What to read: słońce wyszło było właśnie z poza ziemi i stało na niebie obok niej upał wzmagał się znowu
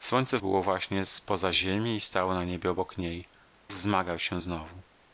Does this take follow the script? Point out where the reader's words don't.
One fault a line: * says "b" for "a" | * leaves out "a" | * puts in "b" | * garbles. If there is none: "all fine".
* leaves out "wyszło"
* leaves out "upał"